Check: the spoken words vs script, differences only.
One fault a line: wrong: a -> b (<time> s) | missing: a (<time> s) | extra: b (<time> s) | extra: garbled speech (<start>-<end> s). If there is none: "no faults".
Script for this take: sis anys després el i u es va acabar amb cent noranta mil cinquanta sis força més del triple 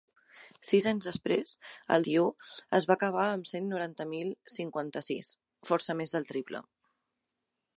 no faults